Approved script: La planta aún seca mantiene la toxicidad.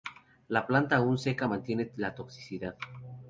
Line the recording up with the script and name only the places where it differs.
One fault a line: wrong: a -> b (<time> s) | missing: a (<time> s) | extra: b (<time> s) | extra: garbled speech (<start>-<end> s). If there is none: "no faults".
no faults